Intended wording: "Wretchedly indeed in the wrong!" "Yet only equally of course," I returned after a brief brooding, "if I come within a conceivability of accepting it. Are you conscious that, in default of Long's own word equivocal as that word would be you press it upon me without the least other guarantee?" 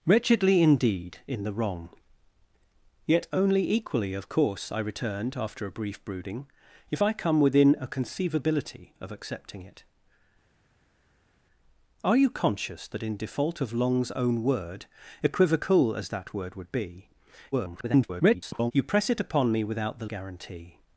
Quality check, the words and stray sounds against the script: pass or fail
fail